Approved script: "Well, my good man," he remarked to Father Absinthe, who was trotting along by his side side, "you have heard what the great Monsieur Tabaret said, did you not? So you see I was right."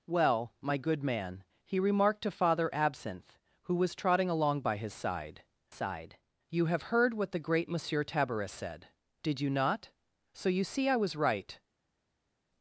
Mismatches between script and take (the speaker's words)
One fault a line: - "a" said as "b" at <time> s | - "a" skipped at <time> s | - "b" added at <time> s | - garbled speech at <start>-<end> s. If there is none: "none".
none